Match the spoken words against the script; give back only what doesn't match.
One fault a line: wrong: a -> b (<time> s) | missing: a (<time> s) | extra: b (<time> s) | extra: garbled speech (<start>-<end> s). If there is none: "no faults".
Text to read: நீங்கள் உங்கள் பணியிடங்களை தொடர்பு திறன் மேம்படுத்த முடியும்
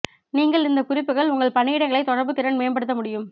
extra: இந்த குறிப்புகள் (0.7 s)